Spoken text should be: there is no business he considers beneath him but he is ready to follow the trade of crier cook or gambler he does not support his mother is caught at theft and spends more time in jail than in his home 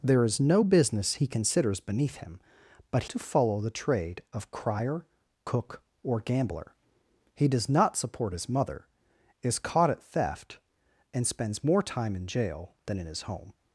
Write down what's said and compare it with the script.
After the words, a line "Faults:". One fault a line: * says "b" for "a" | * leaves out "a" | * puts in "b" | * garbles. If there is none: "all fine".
there is no business he considers beneath him but to follow the trade of crier cook or gambler he does not support his mother is caught at theft and spends more time in jail than in his home
Faults:
* leaves out "he is ready"